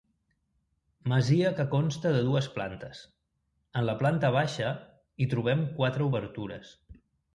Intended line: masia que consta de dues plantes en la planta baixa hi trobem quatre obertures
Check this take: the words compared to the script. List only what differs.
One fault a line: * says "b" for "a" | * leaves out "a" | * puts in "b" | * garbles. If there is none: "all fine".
all fine